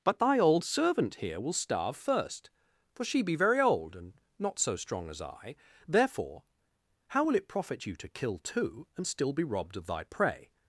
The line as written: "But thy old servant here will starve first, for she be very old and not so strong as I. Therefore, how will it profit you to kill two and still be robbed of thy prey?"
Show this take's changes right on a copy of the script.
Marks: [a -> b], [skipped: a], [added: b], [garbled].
"But thy old servant here will starve first, for she be very old and not so strong as I. Therefore, how will it profit you to kill two and still be robbed of thy prey?"